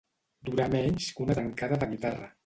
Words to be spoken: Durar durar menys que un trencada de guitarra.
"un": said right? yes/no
no